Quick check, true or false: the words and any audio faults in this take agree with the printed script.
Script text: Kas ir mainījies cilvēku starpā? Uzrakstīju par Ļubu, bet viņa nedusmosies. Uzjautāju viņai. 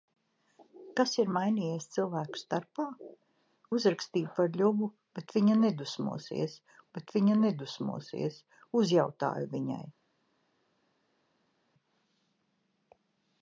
false